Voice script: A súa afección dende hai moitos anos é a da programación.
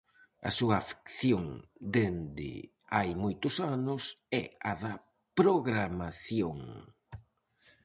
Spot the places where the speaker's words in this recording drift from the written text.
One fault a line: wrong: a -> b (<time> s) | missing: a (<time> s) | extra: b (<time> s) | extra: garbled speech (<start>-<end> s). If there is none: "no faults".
no faults